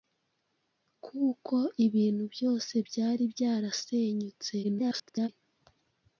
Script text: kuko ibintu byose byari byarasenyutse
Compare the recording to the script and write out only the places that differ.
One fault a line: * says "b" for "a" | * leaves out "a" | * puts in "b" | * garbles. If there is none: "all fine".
* garbles